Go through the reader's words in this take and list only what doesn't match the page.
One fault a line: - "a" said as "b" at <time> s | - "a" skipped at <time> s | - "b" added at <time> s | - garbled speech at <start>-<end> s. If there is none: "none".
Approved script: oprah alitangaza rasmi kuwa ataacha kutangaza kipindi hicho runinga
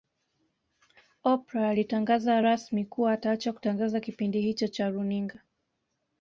- "cha" added at 4.7 s